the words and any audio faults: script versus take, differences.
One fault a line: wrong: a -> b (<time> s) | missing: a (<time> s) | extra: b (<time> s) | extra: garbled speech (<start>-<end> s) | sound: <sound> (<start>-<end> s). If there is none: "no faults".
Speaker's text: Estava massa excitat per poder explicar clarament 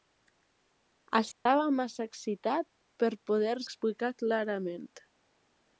sound: dropout (1.3-1.5 s)